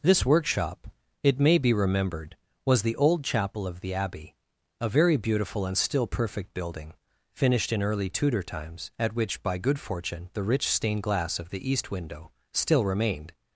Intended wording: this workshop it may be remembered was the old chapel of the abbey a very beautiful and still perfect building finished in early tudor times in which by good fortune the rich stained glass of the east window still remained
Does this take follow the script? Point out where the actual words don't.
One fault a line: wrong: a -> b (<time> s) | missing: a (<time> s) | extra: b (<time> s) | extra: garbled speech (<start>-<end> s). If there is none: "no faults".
wrong: in -> at (9.0 s)